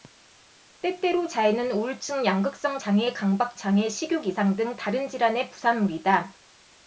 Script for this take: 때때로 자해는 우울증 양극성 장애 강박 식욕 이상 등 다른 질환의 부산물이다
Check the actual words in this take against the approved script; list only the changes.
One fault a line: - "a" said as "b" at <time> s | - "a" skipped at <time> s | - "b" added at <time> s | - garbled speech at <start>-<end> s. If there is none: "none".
- "장애" added at 3.6 s